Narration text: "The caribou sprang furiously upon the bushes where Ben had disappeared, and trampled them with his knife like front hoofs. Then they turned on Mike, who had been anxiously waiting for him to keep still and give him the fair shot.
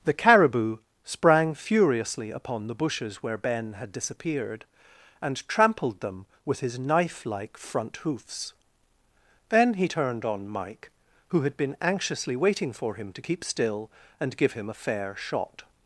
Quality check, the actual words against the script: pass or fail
fail